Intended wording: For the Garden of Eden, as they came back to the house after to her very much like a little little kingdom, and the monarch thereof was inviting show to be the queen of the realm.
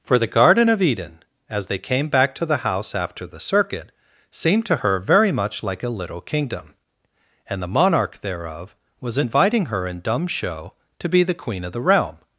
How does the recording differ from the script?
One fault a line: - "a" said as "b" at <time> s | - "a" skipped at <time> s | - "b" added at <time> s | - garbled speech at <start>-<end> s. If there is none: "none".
- "the circuit seemed" added at 3.3 s
- "little" skipped at 6.2 s
- "her in dumb" added at 9.7 s